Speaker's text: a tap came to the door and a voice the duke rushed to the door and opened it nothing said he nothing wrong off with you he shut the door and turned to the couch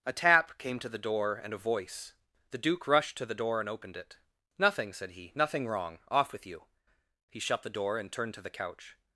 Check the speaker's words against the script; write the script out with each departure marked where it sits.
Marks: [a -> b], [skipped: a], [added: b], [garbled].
a tap came to the door and a voice the duke rushed to the door and opened it nothing said he nothing wrong off with you he shut the door and turned to the couch